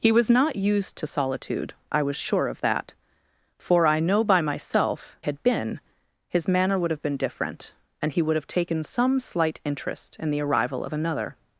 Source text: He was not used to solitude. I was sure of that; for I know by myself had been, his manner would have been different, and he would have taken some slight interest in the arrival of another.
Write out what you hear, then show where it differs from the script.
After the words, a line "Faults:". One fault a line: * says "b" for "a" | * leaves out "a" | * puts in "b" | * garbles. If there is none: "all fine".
He was not used to solitude. I was sure of that; for I know by myself had been, his manner would have been different, and he would have taken some slight interest in the arrival of another.
Faults:
all fine